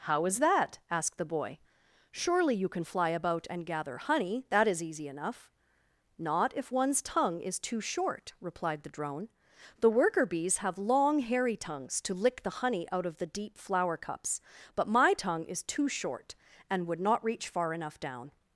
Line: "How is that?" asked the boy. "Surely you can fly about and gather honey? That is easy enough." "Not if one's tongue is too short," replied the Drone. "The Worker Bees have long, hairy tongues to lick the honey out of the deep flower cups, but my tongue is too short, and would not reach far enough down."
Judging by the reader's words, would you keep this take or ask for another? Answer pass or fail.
pass